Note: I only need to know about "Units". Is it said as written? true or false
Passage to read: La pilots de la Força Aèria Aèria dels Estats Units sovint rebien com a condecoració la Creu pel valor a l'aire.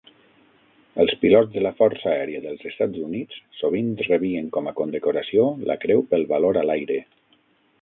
true